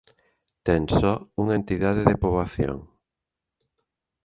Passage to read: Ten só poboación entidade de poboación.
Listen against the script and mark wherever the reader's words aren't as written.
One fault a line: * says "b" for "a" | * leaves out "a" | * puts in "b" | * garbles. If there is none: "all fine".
* says "unha" for "poboación"